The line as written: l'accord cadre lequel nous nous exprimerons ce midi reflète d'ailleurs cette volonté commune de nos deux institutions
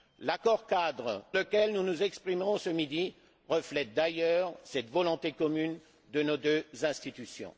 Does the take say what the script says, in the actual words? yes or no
yes